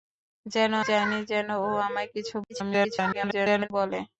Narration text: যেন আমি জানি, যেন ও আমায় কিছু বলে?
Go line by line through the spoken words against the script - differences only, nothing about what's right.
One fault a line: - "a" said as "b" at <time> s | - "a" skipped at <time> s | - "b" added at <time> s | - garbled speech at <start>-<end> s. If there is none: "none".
- "আমি" skipped at 0.7 s
- garbled speech at 2.5-3.7 s